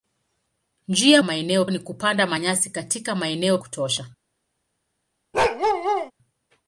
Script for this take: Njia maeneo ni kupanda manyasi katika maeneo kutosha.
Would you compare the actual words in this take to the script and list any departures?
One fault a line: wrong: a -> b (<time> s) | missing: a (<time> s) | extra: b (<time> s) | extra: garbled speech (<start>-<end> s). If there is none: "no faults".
no faults